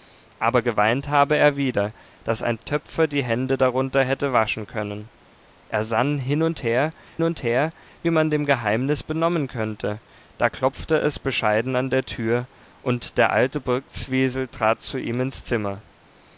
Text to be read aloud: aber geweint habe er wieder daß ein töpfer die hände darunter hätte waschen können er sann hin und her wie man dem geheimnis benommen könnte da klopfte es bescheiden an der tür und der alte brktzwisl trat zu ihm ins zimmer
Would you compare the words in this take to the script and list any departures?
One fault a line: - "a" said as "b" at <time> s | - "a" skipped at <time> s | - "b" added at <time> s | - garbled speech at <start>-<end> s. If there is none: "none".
- "und her" added at 7.2 s